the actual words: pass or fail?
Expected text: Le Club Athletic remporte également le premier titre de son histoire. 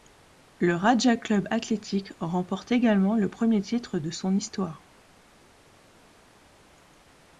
fail